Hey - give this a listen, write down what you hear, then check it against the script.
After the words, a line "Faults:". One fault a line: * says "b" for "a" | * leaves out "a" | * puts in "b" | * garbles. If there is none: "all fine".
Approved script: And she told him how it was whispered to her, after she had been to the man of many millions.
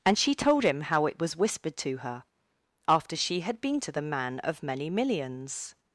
And she told him how it was whispered to her, after she had been to the man of many millions.
Faults:
all fine